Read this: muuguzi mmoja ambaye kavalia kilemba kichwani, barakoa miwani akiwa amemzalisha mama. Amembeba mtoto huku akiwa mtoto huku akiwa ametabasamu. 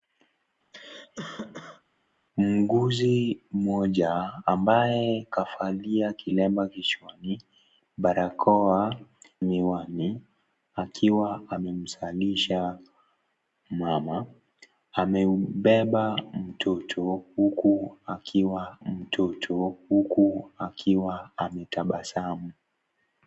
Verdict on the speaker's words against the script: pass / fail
pass